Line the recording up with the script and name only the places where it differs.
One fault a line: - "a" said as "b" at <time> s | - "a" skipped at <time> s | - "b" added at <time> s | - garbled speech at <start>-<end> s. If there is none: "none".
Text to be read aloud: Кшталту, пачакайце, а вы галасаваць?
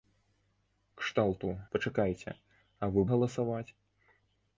none